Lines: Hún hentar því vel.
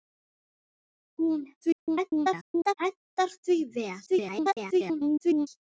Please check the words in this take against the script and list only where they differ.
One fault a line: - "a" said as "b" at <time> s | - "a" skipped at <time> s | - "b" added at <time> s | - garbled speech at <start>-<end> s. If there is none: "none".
- garbled speech at 1.6-2.7 s
- garbled speech at 4.1-5.5 s